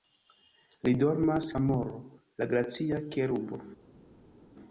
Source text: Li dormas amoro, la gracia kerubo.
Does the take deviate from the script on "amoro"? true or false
false